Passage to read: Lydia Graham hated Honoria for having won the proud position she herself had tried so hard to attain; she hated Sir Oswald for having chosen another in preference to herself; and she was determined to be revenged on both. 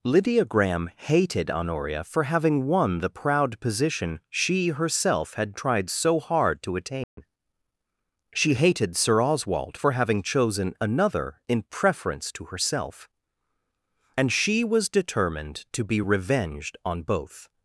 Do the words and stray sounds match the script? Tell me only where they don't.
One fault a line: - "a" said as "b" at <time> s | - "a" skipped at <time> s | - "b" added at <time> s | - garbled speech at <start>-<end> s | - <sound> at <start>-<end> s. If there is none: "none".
- dropout at 7.0-7.2 s